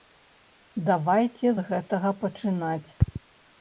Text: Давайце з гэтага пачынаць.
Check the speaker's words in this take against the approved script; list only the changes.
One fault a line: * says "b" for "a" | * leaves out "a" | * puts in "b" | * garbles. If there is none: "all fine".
all fine